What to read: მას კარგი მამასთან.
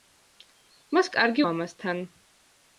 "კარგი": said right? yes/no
yes